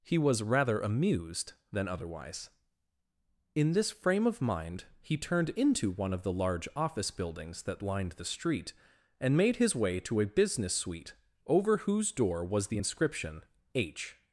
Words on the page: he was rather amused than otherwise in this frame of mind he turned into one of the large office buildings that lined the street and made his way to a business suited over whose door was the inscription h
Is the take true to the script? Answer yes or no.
no